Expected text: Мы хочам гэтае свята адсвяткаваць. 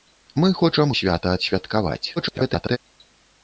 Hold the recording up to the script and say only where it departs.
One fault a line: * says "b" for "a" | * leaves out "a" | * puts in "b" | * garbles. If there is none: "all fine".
* leaves out "гэтае"
* garbles